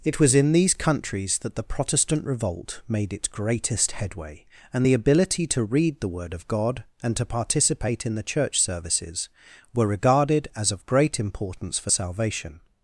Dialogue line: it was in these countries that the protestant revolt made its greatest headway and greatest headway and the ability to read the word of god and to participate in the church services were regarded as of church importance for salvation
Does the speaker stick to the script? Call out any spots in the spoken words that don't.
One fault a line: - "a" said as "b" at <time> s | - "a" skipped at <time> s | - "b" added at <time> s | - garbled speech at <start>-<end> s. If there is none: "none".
- "greatest headway and" skipped at 4.9 s
- "church" said as "great" at 10.9 s